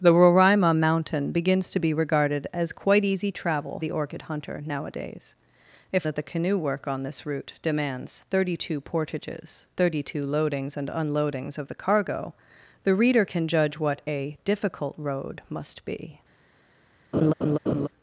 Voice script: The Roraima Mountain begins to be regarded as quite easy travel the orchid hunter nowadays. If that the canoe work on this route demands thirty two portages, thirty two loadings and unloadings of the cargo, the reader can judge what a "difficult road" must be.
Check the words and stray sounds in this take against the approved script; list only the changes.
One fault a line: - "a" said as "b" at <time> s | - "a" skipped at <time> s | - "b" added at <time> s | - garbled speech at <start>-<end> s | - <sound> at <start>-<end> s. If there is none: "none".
- laugh at 17.1-17.9 s